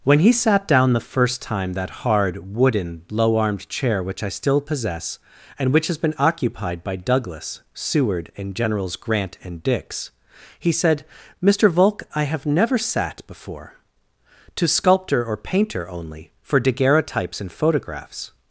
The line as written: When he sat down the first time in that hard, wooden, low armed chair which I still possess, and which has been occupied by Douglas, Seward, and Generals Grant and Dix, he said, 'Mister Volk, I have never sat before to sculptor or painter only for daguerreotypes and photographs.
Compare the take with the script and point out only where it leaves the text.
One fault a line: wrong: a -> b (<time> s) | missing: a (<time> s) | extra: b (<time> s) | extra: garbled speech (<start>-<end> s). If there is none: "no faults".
missing: in (1.7 s)